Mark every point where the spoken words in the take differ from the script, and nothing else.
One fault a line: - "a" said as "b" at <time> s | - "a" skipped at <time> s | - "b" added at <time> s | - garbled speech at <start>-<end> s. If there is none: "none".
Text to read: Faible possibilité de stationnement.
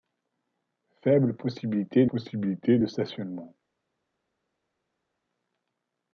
- "possibilité" added at 2.0 s